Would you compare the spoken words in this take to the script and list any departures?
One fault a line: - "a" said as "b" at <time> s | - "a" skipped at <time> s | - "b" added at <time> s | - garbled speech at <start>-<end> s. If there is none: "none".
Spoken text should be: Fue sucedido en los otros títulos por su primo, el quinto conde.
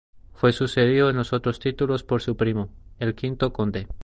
none